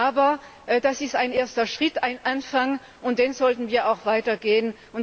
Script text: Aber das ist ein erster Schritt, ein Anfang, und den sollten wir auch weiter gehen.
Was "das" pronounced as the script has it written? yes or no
yes